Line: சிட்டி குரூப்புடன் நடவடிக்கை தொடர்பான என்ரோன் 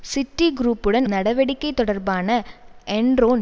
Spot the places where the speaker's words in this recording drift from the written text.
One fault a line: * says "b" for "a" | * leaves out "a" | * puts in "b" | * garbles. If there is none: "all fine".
all fine